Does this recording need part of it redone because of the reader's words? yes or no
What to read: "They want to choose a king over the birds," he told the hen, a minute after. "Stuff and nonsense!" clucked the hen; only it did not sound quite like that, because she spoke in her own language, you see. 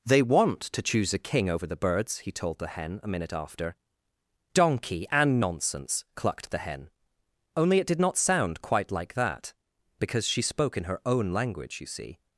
yes